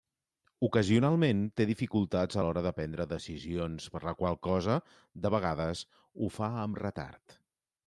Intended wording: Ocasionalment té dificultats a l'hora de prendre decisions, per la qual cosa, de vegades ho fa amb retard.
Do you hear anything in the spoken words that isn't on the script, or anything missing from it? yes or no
no